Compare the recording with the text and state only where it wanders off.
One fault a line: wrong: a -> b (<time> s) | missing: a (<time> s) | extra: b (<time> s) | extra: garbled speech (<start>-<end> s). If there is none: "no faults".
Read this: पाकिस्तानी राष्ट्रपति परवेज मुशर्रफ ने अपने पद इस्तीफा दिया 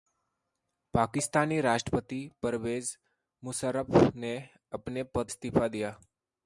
no faults